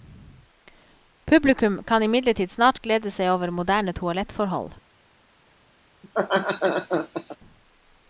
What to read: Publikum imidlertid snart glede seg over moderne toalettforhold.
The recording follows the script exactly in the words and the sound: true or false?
false